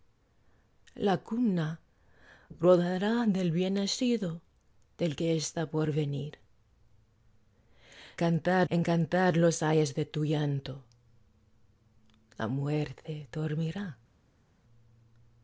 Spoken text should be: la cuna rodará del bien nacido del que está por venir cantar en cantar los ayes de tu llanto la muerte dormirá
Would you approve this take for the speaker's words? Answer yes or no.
yes